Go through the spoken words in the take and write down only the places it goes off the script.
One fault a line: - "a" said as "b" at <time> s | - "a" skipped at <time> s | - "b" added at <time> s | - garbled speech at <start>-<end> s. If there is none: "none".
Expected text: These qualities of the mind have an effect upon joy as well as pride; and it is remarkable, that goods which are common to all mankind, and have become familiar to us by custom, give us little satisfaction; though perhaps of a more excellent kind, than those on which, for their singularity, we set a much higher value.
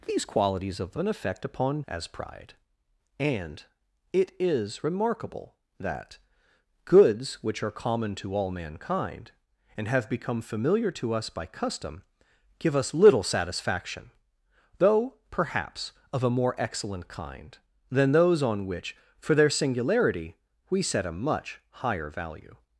- "mind have" skipped at 1.0 s
- "joy as well" skipped at 1.8 s